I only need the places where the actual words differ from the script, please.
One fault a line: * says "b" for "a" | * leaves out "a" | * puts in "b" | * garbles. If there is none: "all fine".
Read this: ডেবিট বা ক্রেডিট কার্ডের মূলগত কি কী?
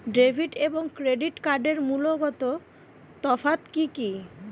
* says "এবং" for "বা"
* puts in "তফাত"